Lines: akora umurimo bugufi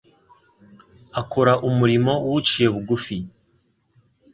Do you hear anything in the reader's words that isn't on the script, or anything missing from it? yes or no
yes